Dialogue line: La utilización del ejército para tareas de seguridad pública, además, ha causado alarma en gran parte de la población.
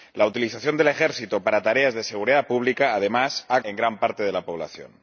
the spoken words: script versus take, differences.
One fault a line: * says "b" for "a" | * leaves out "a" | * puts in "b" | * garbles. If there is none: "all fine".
* leaves out "causado alarma"